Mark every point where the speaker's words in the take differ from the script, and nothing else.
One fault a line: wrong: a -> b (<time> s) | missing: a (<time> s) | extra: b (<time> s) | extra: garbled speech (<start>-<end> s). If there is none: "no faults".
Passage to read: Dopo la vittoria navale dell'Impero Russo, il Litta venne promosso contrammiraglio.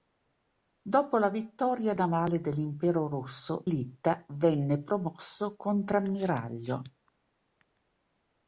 missing: il (3.6 s)